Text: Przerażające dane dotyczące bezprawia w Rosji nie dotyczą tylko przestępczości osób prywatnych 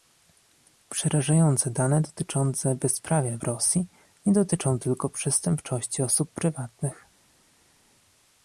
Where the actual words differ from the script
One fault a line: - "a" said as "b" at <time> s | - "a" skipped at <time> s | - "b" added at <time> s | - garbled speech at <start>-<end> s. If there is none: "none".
none